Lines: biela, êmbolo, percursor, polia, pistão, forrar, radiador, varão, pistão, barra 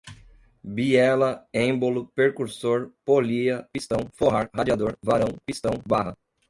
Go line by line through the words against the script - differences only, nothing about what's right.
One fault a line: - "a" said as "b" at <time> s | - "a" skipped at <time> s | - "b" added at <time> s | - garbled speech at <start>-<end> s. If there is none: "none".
none